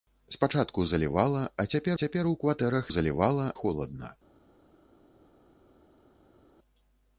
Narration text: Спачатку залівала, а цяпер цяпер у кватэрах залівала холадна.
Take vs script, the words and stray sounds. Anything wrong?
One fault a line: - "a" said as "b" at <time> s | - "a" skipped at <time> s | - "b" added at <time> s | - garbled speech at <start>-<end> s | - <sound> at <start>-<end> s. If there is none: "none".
none